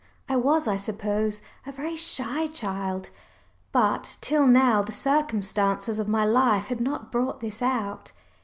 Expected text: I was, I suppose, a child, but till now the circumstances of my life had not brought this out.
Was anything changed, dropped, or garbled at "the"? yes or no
no